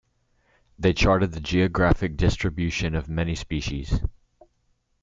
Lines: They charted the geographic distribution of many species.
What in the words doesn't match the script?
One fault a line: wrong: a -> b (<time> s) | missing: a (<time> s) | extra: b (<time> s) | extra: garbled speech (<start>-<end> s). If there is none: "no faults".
no faults